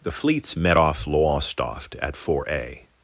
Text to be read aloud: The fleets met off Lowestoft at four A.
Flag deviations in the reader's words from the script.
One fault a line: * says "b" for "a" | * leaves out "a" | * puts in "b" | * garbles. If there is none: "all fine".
all fine